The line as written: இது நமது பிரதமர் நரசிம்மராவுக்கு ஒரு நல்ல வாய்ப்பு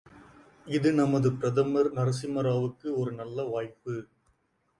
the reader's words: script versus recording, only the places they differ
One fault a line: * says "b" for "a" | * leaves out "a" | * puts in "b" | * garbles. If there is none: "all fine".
all fine